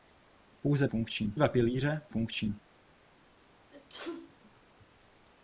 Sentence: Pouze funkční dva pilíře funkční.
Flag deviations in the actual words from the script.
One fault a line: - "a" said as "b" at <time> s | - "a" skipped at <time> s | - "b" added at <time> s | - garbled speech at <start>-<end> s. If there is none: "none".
none